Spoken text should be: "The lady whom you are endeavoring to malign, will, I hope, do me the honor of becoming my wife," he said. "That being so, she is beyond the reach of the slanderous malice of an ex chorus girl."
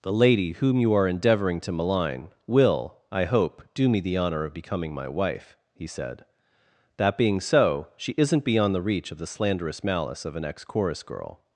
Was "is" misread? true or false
true